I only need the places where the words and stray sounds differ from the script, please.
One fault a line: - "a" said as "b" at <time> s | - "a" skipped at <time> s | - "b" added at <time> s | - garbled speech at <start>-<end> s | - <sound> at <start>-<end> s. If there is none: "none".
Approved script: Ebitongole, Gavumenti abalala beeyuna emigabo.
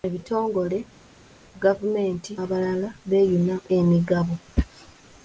none